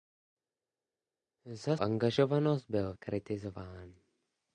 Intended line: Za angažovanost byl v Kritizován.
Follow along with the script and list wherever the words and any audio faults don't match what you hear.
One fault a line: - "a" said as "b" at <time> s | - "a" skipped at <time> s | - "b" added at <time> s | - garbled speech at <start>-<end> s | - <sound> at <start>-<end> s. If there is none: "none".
none